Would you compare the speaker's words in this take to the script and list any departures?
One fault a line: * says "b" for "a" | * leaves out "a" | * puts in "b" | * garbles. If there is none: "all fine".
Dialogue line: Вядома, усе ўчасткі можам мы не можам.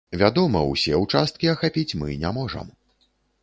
* says "ахапіць" for "можам"